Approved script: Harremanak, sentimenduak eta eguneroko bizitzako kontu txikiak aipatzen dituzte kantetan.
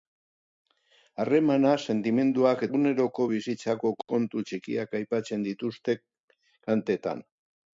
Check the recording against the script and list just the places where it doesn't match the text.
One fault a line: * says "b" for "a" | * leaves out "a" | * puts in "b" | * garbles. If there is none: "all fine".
* leaves out "eta"